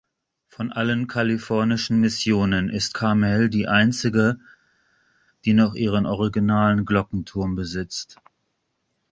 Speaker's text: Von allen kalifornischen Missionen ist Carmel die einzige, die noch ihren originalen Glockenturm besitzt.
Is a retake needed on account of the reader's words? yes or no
no